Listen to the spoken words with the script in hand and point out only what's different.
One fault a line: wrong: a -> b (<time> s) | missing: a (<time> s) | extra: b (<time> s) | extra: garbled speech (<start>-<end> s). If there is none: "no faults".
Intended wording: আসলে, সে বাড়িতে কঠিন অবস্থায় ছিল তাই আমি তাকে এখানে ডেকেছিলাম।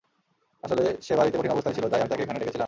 no faults